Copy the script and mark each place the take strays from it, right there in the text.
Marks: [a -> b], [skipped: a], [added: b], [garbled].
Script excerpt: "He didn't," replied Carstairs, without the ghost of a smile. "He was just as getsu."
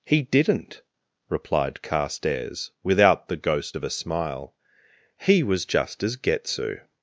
"He didn't," replied Carstairs, without the ghost of a smile. "He was just as getsu."